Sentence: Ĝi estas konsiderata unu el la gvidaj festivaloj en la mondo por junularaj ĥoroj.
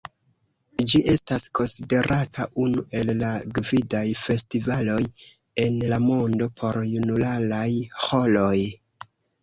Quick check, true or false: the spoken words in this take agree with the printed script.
true